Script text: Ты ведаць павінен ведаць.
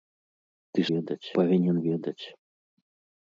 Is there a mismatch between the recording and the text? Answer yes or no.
no